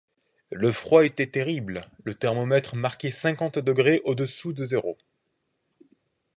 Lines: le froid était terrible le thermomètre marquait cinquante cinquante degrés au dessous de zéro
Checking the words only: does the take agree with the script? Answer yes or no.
no